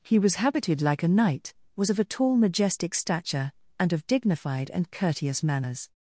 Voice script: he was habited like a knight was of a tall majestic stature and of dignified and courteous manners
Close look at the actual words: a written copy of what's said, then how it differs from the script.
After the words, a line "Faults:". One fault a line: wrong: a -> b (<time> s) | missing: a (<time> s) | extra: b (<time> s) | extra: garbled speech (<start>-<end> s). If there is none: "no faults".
he was habited like a knight was of a tall majestic stature and of dignified and courteous manners
Faults:
no faults